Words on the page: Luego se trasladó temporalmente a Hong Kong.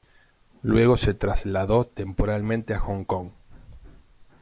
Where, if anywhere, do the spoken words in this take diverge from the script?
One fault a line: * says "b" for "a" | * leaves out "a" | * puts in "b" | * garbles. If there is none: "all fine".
all fine